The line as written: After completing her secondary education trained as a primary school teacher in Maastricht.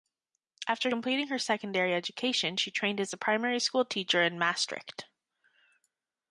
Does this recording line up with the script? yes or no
no